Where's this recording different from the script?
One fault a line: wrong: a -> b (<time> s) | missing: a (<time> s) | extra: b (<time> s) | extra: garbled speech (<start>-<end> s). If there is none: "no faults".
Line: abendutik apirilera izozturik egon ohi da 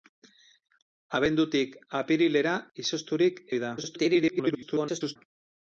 missing: egon (3.4 s)
extra: garbled speech (3.8-5.2 s)